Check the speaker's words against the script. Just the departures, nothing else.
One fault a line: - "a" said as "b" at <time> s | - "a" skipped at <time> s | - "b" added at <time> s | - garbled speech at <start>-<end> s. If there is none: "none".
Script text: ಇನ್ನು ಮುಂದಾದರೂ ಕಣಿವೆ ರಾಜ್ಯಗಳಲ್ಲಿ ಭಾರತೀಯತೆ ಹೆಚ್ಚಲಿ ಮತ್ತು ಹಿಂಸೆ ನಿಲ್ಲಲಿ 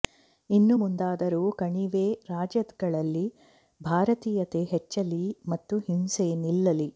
none